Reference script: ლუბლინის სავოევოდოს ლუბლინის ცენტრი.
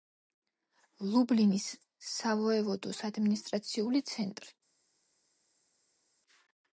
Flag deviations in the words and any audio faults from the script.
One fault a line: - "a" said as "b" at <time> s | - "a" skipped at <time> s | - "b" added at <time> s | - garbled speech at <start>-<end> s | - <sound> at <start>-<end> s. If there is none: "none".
- "ლუბლინის" said as "ადმინისტრაციული" at 3.1 s